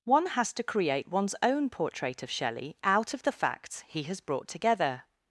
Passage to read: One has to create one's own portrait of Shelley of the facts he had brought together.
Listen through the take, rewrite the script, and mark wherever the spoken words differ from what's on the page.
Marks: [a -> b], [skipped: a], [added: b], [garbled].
One has to create one's own portrait of Shelley [added: out] of the facts he [had -> has] brought together.